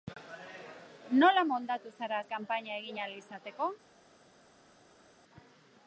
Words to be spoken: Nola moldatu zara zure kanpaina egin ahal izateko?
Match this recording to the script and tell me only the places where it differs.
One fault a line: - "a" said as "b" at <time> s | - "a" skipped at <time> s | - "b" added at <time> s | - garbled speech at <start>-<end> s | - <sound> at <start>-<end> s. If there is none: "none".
- "zure" skipped at 2.2 s